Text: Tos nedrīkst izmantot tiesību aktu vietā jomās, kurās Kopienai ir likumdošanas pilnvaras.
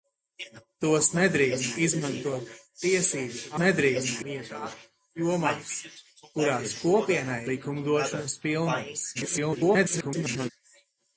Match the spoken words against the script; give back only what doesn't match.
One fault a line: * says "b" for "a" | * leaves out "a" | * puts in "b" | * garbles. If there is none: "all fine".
* says "nedrīkst" for "aktu"
* leaves out "ir"
* garbles